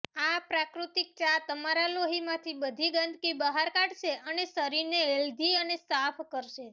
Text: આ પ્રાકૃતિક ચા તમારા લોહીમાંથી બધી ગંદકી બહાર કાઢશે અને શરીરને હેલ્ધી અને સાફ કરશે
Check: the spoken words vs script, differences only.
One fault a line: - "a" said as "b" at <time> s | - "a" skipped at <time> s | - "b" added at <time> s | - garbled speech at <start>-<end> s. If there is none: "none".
none